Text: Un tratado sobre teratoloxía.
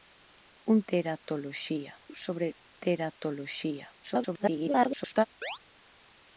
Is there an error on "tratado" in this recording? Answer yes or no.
yes